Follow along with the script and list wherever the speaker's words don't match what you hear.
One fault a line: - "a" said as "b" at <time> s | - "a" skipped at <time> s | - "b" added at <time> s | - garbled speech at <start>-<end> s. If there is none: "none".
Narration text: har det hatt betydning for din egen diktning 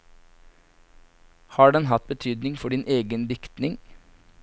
- "det" said as "den" at 1.7 s